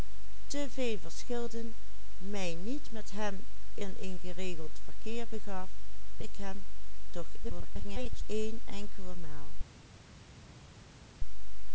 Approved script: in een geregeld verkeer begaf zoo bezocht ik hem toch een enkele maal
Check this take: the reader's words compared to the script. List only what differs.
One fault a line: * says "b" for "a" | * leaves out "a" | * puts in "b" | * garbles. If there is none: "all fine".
* leaves out "zoo bezocht"
* garbles